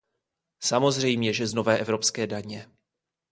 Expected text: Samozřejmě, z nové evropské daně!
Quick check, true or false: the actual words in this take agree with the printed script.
false